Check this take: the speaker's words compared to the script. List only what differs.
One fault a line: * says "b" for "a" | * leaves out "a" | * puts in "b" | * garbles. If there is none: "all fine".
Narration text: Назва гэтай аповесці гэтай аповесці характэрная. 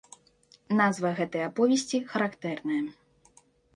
* leaves out "гэтай аповесці"